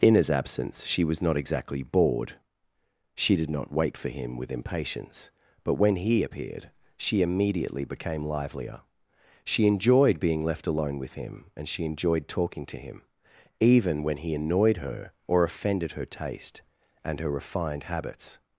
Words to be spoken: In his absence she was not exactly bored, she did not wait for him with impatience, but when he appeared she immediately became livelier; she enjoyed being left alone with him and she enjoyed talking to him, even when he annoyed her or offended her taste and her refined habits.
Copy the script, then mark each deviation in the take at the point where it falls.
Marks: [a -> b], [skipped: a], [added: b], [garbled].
In his absence she was not exactly bored, she did not wait for him with impatience, but when he appeared she immediately became livelier; she enjoyed being left alone with him and she enjoyed talking to him, even when he annoyed her or offended her taste and her refined habits.